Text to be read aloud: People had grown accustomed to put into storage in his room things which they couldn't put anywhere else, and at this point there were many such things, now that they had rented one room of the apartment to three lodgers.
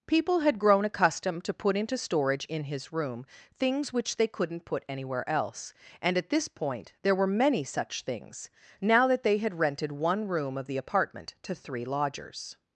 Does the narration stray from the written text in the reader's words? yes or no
no